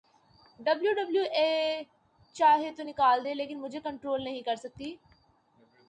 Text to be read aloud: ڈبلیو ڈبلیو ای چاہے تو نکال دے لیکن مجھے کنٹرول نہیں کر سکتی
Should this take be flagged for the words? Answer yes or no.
no